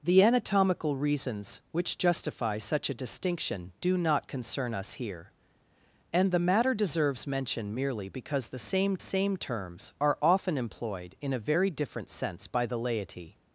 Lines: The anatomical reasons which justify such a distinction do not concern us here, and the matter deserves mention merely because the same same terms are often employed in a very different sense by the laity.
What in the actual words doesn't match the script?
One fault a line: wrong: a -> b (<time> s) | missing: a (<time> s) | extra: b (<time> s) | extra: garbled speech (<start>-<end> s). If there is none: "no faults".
no faults